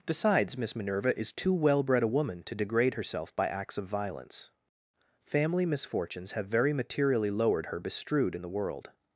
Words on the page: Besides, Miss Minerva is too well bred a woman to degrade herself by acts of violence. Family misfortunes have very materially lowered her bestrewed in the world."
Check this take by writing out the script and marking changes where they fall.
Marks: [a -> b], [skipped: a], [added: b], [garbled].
Besides, Miss Minerva is too well bred a woman to degrade herself by acts of violence. Family misfortunes have very materially lowered her bestrewed in the world."